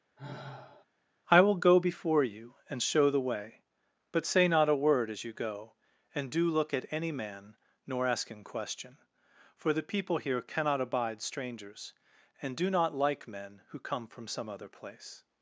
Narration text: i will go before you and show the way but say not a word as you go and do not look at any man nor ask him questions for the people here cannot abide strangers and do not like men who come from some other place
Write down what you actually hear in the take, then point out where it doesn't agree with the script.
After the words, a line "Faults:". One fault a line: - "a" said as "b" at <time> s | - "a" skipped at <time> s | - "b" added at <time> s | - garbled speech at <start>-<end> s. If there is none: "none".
i will go before you and show the way but say not a word as you go and do look at any man nor ask him question for the people here cannot abide strangers and do not like men who come from some other place
Faults:
- "not" skipped at 6.5 s
- "questions" said as "question" at 8.4 s